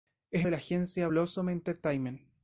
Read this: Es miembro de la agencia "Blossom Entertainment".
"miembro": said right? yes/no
no